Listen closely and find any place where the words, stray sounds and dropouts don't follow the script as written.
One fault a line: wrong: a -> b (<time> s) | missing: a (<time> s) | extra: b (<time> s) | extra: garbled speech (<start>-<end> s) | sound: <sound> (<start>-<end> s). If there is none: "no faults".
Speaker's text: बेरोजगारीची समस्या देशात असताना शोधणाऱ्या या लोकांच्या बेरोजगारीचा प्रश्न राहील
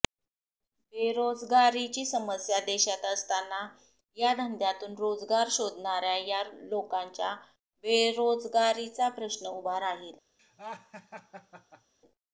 extra: या धंद्यातून रोजगार (4.2 s)
extra: उभा (9.5 s)
sound: laugh (10.4-11.9 s)